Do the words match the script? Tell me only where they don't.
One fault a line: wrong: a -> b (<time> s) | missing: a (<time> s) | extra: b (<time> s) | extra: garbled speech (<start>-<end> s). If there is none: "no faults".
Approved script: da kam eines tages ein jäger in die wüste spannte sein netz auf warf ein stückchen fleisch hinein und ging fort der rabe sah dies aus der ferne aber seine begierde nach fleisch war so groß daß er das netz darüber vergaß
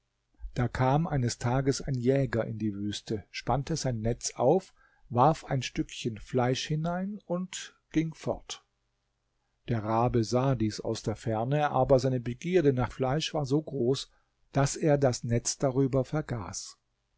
no faults